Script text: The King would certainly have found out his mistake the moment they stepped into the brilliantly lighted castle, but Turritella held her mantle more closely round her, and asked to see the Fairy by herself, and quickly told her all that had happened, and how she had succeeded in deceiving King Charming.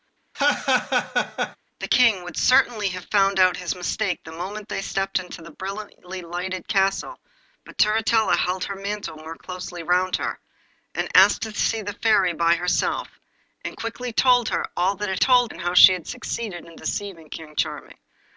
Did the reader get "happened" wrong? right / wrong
wrong